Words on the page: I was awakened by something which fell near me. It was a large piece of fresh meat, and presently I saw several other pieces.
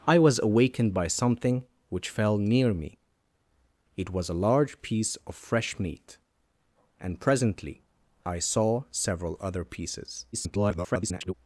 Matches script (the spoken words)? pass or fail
fail